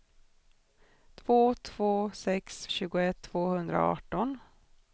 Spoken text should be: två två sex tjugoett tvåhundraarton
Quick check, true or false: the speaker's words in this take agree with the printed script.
true